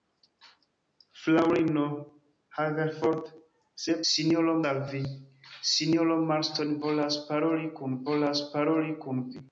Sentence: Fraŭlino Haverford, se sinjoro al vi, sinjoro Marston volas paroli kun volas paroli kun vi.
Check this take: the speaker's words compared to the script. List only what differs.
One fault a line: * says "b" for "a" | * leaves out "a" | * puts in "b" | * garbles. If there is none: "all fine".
all fine